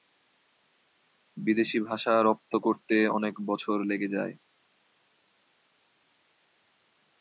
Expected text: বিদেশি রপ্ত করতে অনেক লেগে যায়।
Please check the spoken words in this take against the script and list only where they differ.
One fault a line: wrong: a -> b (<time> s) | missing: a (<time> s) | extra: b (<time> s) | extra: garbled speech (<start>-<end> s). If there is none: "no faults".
extra: ভাষা (1.9 s)
extra: বছর (3.5 s)